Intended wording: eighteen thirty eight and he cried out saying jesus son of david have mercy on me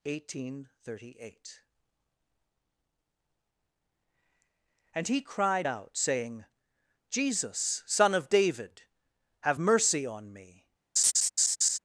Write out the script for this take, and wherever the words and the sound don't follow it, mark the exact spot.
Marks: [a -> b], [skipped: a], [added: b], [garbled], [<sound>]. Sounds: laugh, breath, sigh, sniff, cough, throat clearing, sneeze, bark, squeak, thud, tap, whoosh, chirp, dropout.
eighteen thirty eight and he cried out saying jesus son of david have mercy on me [laugh]